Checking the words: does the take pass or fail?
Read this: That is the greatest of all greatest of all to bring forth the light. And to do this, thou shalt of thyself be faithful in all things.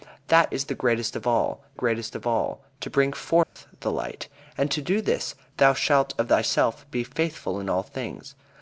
pass